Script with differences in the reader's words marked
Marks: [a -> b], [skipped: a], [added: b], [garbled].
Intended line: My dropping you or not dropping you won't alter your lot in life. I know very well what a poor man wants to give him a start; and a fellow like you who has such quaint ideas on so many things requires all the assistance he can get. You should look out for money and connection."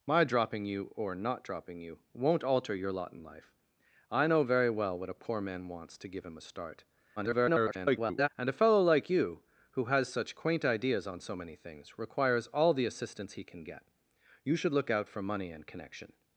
My dropping you or not dropping you won't alter your lot in life. I know very well what a poor man wants to give him a start; [garbled] and a fellow like you who has such quaint ideas on so many things requires all the assistance he can get. You should look out for money and connection."